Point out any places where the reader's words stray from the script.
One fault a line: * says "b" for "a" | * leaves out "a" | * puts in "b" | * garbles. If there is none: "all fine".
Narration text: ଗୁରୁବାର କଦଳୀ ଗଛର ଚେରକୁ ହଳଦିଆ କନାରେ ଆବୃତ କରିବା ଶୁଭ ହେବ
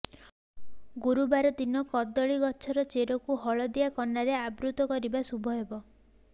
* puts in "ଦିନ"